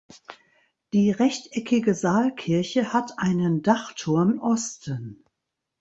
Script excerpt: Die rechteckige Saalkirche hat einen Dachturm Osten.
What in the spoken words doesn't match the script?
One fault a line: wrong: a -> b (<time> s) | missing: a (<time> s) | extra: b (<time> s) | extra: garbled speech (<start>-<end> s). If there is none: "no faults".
no faults